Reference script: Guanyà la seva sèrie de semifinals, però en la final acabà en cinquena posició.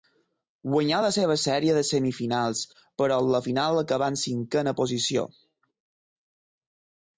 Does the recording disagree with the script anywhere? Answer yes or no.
no